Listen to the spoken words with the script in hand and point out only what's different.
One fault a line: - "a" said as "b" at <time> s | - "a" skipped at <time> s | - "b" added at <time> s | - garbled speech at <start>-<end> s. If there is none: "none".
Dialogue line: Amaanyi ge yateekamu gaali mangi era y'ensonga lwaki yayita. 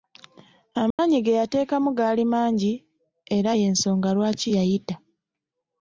none